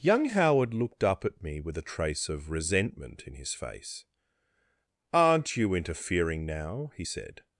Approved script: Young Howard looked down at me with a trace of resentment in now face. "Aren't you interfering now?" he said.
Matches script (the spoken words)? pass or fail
fail